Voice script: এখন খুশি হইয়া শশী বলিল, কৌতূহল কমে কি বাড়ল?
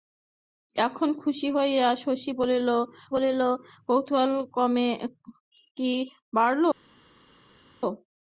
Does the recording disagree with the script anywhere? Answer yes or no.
yes